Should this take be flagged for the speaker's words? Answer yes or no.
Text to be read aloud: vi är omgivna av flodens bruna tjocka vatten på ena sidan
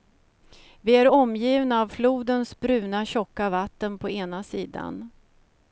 no